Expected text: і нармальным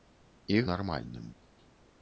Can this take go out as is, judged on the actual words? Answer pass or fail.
pass